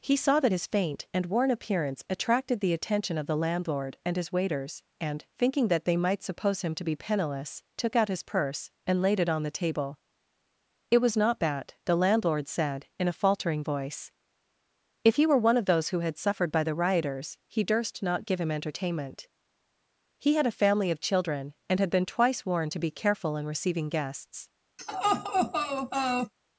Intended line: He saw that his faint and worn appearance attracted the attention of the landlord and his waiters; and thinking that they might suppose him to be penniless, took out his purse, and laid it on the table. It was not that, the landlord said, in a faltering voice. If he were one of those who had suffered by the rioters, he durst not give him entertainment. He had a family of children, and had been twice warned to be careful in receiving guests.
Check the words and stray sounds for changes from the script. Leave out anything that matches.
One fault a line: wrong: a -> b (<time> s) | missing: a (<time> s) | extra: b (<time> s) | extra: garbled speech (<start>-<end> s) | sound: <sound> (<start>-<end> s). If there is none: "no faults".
wrong: that -> bad (11.4 s)
sound: laugh (24.8-26.3 s)